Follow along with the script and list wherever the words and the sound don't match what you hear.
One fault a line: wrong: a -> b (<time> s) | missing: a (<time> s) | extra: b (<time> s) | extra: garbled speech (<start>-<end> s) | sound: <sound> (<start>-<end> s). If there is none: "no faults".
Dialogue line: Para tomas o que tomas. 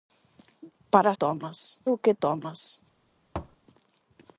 sound: thud (3.4-3.6 s)